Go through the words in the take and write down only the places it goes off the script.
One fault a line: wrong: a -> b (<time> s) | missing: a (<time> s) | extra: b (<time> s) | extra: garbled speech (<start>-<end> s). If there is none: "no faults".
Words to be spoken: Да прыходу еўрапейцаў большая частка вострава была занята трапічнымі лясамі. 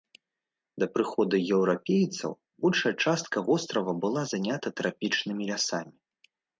no faults